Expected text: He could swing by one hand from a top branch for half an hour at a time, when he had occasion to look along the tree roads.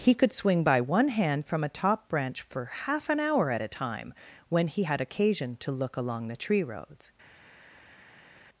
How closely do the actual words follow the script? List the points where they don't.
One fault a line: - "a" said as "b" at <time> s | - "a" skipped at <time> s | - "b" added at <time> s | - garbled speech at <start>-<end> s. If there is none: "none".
none